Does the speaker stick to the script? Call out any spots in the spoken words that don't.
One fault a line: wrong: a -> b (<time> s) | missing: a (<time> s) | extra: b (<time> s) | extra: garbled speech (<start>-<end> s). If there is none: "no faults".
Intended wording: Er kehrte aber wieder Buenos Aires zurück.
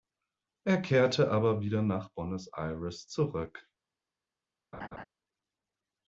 extra: nach (1.8 s)